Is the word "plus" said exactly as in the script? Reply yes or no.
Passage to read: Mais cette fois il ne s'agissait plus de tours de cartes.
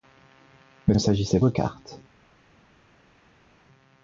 no